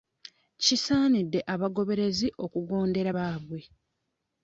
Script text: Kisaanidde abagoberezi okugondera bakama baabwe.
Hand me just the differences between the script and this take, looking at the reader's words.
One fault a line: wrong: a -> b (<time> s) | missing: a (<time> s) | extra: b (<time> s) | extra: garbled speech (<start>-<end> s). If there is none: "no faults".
missing: bakama (3.1 s)